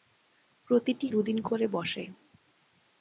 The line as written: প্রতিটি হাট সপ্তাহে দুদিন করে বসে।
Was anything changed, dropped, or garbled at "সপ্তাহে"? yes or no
yes